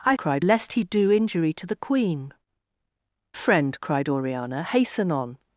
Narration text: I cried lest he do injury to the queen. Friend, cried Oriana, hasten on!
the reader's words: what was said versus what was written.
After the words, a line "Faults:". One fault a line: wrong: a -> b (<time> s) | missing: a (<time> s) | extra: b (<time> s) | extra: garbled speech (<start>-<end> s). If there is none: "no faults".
I cried lest he do injury to the queen. Friend, cried Oriana, hasten on!
Faults:
no faults